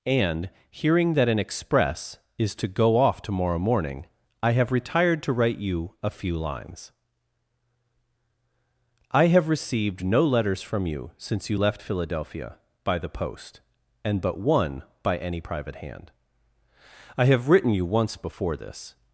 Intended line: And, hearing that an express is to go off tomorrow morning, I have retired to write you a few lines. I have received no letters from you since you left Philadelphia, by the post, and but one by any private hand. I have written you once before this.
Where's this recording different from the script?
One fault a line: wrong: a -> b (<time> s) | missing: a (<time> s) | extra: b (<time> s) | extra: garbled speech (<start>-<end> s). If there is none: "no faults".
no faults